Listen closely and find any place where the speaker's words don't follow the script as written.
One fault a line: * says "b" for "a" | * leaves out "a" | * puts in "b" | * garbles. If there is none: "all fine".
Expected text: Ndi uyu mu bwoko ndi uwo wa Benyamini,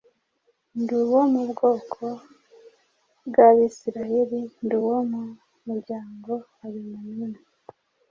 * says "uwo" for "uyu"
* puts in "bw'Abisirayeli"
* puts in "mu muryango"